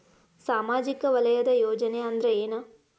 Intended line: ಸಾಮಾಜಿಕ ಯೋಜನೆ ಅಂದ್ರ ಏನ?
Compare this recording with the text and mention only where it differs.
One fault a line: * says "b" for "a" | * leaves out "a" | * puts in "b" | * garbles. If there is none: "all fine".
* puts in "ವಲಯದ"